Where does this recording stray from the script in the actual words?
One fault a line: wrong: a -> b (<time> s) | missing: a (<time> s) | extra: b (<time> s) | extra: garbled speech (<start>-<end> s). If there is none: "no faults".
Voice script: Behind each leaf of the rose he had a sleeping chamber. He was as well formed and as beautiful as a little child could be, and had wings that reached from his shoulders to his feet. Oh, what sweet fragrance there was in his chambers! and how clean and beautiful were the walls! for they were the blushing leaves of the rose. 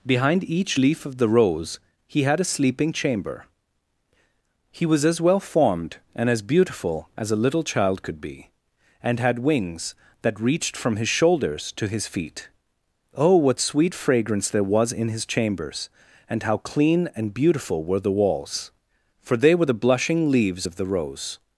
no faults